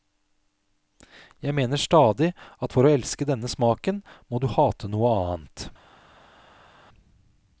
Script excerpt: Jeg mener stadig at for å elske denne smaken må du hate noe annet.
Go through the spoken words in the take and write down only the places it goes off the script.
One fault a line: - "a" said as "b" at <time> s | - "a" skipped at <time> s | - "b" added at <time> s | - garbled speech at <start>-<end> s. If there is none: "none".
none